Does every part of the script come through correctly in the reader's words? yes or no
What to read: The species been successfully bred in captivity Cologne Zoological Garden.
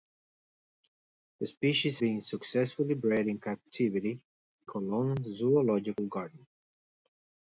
yes